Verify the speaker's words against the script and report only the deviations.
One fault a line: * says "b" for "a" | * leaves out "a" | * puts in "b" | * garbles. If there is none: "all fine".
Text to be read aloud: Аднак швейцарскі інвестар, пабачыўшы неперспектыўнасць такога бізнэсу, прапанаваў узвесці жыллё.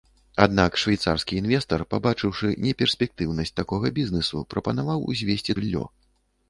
all fine